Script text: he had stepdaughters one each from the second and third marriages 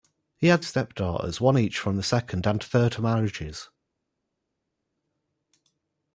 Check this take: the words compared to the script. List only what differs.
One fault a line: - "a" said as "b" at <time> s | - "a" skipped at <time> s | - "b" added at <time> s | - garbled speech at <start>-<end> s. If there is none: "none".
none